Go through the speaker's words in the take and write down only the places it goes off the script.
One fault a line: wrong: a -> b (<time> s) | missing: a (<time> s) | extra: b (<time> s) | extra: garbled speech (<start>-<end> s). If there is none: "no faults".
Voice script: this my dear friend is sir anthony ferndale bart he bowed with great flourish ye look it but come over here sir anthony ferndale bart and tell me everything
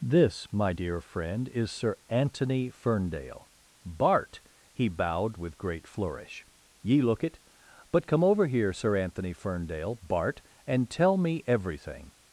no faults